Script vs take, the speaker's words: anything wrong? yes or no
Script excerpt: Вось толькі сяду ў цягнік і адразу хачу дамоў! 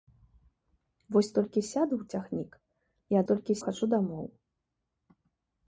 yes